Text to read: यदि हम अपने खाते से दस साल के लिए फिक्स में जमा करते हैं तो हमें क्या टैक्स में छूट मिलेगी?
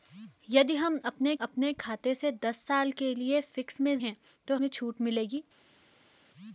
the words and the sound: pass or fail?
fail